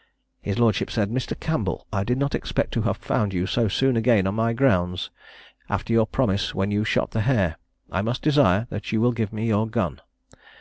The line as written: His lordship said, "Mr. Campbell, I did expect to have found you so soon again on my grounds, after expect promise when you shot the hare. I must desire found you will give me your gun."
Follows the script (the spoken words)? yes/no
no